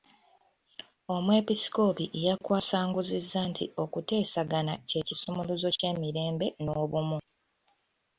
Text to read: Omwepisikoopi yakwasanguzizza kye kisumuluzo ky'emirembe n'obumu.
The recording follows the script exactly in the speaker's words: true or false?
false